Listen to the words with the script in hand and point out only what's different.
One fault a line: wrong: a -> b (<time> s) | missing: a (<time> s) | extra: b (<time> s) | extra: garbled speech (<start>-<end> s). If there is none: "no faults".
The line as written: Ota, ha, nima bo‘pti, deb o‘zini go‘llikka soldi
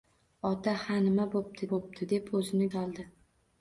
extra: bo‘pti (1.7 s)
missing: go‘llikka (2.7 s)